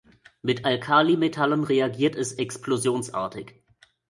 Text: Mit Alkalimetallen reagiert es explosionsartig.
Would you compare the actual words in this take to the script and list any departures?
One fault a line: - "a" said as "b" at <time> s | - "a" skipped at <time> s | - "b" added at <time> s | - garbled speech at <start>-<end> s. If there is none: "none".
none